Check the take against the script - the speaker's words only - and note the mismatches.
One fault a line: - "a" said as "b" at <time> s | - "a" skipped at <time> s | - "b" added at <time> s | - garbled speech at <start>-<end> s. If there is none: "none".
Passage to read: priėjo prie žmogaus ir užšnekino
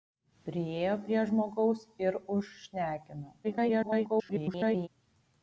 - garbled speech at 3.4-4.9 s